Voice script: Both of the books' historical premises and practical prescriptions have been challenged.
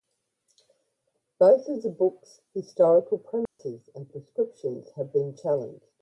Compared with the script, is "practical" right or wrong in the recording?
wrong